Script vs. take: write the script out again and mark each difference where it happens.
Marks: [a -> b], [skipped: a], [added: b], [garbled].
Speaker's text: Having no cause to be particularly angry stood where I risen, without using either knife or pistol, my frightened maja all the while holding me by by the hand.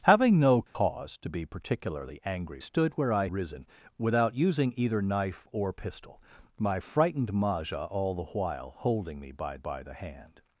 Having no cause to be particularly angry stood where I risen, without using either knife or pistol, my frightened maja all the while holding me by by the hand.